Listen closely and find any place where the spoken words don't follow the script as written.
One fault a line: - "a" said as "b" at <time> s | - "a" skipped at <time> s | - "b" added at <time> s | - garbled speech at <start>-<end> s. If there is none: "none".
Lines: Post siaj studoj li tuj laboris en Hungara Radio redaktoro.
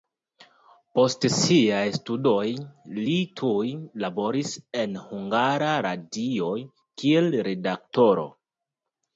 - "kiel" added at 7.0 s